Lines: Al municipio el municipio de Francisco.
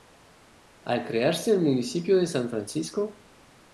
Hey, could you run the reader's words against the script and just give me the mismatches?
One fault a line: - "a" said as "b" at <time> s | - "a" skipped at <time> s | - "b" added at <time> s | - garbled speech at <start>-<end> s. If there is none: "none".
- "municipio" said as "crearse" at 1.1 s
- "San" added at 2.2 s